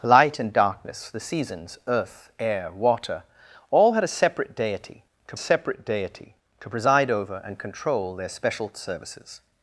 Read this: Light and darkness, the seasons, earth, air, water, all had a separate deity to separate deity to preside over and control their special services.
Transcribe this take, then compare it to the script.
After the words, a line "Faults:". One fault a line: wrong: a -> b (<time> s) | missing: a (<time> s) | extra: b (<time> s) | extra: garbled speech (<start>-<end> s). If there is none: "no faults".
Light and darkness, the seasons, earth, air, water, all had a separate deity to separate deity to preside over and control their special services.
Faults:
no faults